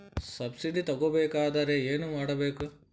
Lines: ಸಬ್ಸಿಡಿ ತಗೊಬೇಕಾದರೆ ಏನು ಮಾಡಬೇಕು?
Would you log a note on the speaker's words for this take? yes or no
no